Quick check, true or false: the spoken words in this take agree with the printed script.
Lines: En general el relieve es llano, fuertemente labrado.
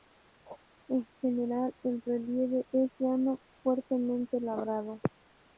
true